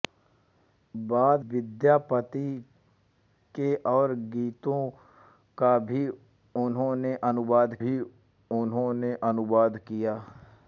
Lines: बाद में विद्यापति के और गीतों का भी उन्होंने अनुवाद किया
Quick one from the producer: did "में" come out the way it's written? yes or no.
no